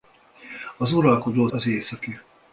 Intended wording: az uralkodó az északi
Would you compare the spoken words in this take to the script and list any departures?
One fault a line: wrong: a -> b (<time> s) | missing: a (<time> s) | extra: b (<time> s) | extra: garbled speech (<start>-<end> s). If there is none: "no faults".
no faults